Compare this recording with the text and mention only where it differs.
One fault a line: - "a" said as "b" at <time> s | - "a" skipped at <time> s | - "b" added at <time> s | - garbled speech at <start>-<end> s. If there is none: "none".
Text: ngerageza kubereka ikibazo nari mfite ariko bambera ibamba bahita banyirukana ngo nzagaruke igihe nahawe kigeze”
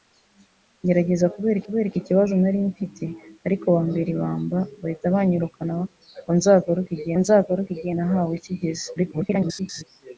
- "kubereka" added at 1.6 s
- "nzagaruke igihe" added at 7.2 s
- garbled speech at 9.0-9.8 s